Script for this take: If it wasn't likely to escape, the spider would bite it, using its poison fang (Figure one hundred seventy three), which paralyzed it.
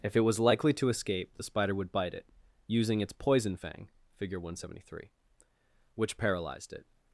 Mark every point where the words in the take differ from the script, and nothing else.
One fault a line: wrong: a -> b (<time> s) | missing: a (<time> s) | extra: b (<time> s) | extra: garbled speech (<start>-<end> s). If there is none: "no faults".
wrong: wasn't -> was (0.2 s)